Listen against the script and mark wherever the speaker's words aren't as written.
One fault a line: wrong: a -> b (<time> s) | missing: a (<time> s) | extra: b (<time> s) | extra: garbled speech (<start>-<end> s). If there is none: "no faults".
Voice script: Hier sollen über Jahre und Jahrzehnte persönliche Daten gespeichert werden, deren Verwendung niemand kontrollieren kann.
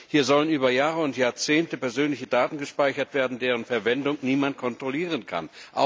no faults